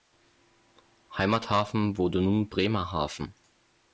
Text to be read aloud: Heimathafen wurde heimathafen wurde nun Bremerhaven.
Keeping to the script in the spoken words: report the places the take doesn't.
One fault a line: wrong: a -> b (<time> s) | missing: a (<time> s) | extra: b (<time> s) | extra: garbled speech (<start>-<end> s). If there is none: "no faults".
missing: heimathafen wurde (2.2 s)